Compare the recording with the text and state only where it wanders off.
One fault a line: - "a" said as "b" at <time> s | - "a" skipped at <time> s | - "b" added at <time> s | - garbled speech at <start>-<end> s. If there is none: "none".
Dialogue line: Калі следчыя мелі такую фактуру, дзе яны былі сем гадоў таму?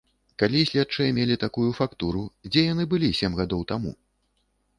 none